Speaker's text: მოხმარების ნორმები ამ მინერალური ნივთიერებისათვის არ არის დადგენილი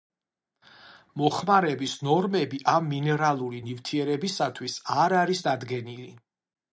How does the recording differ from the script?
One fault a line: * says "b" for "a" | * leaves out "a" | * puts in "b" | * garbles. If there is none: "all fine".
all fine